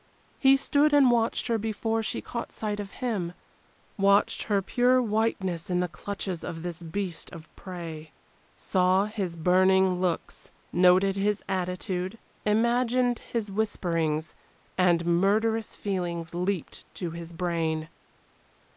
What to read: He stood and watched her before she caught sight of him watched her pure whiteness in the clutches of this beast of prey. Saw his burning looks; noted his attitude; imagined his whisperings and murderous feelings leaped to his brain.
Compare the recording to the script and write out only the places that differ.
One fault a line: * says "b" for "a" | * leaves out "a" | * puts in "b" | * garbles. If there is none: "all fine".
all fine